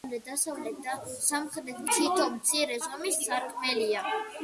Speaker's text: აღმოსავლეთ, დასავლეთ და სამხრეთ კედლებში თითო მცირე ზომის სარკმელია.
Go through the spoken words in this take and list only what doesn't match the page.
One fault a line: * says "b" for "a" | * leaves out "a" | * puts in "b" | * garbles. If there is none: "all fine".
* leaves out "კედლებში"